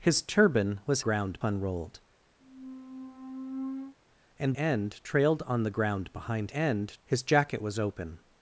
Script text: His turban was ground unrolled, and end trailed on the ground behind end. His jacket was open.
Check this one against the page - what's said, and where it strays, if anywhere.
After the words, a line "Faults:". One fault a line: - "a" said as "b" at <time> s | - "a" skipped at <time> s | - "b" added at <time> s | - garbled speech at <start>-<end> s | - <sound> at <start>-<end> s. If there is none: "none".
His turban was ground unrolled, and end trailed on the ground behind end. His jacket was open.
Faults:
- squeak at 2.4-4.0 s